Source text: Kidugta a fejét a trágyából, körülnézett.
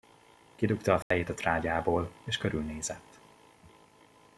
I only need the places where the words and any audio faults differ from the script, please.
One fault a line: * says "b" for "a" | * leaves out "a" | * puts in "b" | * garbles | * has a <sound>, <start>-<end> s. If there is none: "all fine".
* has a dropout, 1.0-1.1 s
* puts in "és"